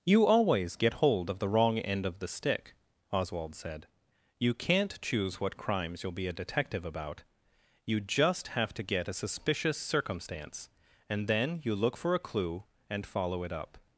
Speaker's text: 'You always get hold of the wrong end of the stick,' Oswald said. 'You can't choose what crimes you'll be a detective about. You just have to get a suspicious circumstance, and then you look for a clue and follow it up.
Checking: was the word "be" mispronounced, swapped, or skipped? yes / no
no